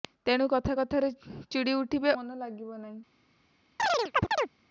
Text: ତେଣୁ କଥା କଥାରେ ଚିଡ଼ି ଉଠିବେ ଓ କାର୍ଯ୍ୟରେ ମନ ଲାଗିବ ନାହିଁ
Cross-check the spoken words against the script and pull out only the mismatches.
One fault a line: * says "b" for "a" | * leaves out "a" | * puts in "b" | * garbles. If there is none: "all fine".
* leaves out "ଓ କାର୍ଯ୍ୟରେ"